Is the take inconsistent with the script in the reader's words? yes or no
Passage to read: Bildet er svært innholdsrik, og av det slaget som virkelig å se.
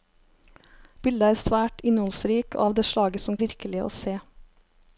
no